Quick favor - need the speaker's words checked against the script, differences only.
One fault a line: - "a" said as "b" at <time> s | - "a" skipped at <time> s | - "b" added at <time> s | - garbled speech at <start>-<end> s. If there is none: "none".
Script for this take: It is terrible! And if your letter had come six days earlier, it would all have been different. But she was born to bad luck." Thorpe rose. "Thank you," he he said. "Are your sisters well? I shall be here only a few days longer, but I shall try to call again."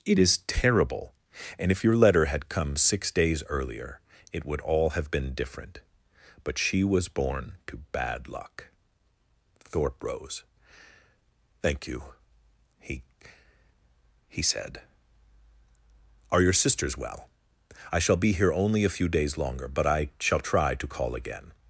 none